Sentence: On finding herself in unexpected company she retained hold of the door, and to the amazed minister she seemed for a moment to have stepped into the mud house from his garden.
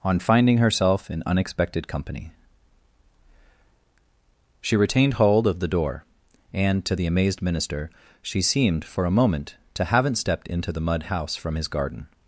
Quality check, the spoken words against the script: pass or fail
fail